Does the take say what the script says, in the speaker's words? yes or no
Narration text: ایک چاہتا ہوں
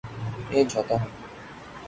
yes